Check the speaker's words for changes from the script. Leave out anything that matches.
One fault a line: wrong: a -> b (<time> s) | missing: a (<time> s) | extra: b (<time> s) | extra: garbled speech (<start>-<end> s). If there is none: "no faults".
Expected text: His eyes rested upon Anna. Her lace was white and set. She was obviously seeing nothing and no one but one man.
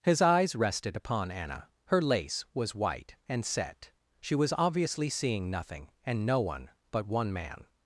no faults